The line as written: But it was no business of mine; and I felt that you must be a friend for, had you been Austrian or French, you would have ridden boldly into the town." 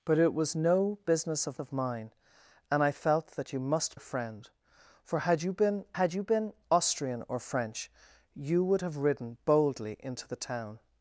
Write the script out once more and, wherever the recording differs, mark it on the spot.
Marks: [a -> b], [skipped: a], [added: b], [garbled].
But it was no business of [added: of] mine; and I felt that you must [skipped: be] a friend for, had you been [added: had you been] Austrian or French, you would have ridden boldly into the town."